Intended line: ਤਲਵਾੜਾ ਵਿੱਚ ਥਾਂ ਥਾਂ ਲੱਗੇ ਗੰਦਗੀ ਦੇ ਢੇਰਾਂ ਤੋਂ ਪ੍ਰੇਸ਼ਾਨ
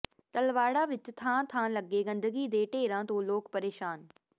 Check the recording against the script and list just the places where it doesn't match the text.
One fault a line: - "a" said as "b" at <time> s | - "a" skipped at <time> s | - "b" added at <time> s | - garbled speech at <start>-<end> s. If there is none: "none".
- "ਲੋਕ" added at 3.2 s